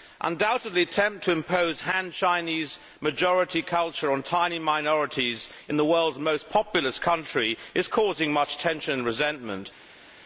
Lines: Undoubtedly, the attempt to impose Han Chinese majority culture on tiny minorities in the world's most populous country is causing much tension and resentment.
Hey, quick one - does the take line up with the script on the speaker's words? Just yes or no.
no